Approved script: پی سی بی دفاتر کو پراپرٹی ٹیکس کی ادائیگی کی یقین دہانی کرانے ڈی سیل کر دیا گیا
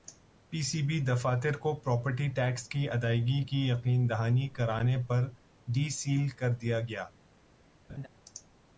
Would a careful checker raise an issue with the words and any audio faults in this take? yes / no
yes